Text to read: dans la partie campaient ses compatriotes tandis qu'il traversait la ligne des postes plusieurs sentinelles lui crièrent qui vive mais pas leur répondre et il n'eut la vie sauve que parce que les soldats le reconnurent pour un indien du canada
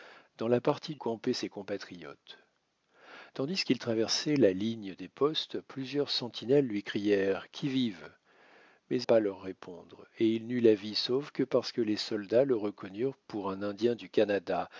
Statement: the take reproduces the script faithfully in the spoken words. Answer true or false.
true